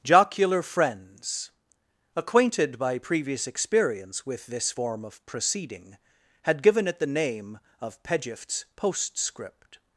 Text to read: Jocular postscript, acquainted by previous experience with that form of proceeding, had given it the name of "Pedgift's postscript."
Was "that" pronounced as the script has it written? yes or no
no